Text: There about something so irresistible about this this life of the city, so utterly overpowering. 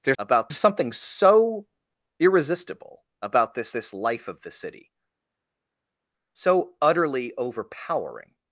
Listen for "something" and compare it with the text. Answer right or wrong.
right